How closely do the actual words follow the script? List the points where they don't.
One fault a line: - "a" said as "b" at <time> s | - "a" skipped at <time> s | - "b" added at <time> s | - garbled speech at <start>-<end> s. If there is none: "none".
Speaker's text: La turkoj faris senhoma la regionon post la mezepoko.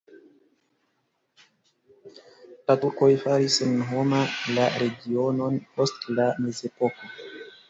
none